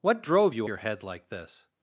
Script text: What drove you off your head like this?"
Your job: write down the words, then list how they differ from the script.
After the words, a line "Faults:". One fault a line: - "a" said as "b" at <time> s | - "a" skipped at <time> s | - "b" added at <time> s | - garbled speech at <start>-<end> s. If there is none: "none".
What drove you your head like this?"
Faults:
- "off" skipped at 0.7 s